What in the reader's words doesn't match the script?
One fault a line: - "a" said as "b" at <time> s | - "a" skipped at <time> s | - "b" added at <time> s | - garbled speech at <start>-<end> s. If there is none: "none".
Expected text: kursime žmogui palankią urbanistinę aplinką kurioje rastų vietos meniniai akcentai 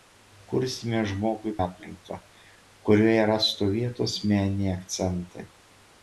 - "palankią urbanistinę" skipped at 1.5 s